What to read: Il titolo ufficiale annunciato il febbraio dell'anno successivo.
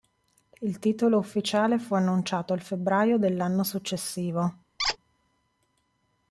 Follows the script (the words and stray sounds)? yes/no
no